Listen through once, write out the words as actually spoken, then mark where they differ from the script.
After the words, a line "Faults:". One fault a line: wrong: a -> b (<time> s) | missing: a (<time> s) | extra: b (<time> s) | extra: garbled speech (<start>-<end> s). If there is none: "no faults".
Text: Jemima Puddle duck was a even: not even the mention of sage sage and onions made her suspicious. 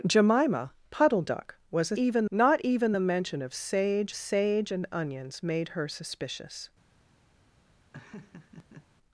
Jemima Puddle duck was a even: not even the mention of sage sage and onions made her suspicious.
Faults:
no faults